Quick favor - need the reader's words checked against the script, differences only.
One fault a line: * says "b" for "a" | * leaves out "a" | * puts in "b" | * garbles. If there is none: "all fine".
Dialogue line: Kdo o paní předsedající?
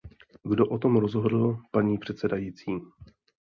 * puts in "tom rozhodl"